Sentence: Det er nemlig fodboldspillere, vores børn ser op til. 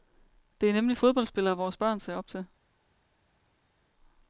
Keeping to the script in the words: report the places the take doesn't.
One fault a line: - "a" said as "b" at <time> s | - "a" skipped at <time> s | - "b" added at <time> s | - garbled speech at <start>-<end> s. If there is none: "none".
none